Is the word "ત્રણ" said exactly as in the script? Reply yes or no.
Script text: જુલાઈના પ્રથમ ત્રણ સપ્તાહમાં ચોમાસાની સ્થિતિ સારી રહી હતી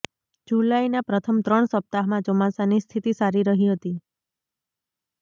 yes